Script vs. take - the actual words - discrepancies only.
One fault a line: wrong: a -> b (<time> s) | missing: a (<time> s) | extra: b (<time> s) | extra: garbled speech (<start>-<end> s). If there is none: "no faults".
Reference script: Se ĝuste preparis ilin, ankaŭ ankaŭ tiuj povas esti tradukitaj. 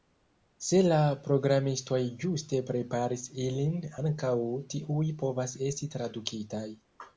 extra: la programistoj (0.8 s)
missing: ankaŭ (4.3 s)